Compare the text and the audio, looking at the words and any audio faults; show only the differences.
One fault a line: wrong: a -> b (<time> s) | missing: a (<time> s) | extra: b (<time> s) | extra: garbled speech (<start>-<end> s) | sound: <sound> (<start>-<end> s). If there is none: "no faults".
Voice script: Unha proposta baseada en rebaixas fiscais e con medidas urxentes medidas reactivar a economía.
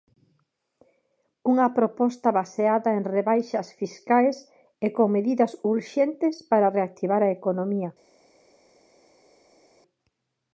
wrong: medidas -> para (6.5 s)